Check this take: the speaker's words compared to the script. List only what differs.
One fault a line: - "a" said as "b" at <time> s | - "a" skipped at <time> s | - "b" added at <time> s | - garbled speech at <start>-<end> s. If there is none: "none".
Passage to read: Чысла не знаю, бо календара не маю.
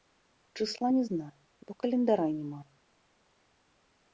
none